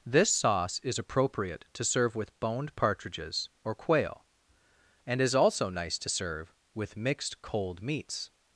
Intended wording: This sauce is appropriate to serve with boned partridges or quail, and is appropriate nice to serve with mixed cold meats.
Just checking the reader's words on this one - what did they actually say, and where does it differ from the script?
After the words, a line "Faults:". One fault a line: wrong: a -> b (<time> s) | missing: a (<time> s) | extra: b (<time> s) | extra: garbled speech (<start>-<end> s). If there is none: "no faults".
This sauce is appropriate to serve with boned partridges or quail, and is also nice to serve with mixed cold meats.
Faults:
wrong: appropriate -> also (5.3 s)